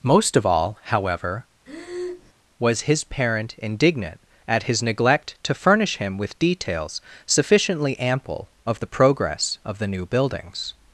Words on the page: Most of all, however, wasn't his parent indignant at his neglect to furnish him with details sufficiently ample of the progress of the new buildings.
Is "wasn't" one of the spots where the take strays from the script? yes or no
yes